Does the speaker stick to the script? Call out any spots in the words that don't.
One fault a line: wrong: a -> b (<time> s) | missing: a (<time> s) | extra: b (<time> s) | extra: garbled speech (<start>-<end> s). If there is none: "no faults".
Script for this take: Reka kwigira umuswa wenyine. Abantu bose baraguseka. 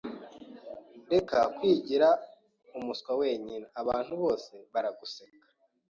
no faults